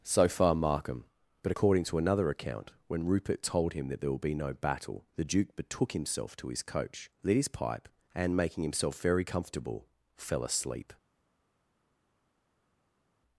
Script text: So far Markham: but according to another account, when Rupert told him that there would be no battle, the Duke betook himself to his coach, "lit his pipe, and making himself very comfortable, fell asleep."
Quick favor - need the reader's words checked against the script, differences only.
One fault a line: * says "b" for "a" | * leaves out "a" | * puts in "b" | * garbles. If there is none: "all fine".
* says "will" for "would"